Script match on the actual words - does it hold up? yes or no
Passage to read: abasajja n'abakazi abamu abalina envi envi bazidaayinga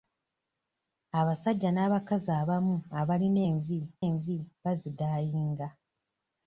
yes